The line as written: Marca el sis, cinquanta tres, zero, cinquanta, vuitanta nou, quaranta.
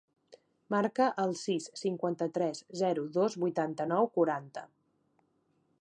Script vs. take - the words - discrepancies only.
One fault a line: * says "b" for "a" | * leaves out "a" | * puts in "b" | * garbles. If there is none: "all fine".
* says "dos" for "cinquanta"